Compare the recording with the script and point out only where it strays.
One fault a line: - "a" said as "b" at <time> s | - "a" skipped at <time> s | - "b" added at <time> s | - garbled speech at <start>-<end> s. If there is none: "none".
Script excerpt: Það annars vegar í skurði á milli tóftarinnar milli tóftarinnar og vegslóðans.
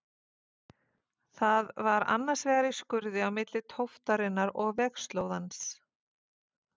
- "var" added at 1.9 s
- "milli tóftarinnar" skipped at 4.5 s